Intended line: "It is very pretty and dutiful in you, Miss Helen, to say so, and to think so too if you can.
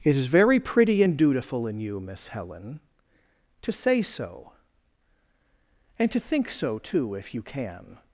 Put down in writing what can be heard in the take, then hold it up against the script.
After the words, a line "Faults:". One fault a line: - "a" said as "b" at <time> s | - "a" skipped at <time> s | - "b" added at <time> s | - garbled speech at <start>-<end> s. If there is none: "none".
"It is very pretty and dutiful in you, Miss Helen, to say so, and to think so too if you can.
Faults:
none